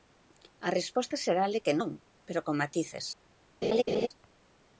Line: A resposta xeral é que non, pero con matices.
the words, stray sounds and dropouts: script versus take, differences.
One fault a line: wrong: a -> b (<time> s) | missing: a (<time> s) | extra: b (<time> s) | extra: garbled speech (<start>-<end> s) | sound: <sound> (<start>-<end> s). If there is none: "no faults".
sound: laugh (3.6-4.1 s)